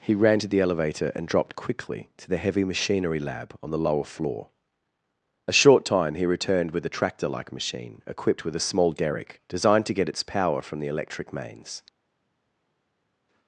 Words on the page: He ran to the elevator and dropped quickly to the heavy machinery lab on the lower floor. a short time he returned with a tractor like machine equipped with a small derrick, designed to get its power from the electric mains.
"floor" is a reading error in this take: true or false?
false